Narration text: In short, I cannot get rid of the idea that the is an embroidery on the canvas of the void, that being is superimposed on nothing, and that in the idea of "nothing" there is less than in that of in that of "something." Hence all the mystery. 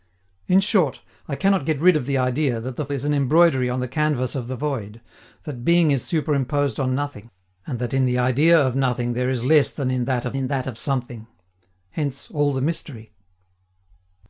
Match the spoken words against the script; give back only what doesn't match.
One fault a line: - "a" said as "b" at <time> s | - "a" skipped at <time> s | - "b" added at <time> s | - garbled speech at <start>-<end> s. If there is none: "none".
none